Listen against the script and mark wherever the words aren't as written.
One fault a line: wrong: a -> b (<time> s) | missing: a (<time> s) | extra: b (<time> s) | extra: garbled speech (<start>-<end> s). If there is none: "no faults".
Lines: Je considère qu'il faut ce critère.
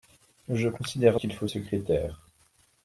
no faults